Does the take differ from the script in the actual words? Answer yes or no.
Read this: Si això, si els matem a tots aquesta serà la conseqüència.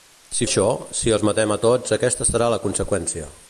no